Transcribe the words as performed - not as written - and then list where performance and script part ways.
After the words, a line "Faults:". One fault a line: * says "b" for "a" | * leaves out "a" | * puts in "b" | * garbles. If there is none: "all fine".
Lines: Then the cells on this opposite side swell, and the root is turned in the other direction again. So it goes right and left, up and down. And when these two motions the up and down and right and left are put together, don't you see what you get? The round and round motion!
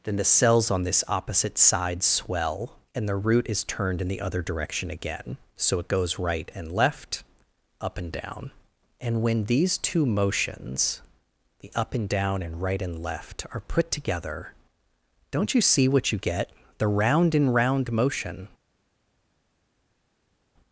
Then the cells on this opposite side swell, and the root is turned in the other direction again. So it goes right and left, up and down. And when these two motions the up and down and right and left are put together, don't you see what you get? The round and round motion!
Faults:
all fine